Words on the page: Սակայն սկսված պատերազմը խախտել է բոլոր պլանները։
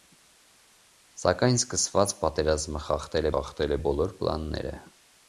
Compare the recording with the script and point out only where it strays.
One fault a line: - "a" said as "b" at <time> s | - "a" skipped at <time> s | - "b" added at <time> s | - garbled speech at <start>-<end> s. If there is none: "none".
- "խախտել" added at 3.3 s